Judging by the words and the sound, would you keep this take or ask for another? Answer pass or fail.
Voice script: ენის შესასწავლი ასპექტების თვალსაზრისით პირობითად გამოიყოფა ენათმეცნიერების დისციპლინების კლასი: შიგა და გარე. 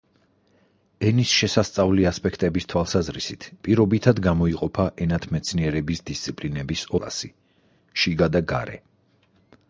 pass